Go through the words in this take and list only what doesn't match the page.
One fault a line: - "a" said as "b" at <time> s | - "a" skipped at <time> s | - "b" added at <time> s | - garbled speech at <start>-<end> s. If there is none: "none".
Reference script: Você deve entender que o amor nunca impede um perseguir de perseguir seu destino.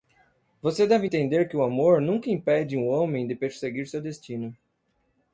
- "perseguir" said as "homem" at 2.9 s